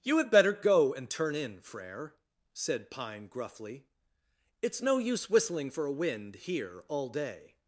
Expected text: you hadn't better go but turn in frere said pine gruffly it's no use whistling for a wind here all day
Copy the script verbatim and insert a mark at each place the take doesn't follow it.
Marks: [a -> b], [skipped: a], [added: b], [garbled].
you [hadn't -> had] better go [but -> and] turn in frere said pine gruffly it's no use whistling for a wind here all day